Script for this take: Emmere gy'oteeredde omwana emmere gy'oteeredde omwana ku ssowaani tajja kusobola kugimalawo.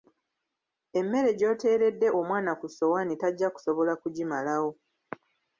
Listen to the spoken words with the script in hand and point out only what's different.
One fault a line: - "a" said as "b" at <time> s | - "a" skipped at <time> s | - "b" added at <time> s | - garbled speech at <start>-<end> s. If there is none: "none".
- "emmere gy'oteeredde omwana" skipped at 2.5 s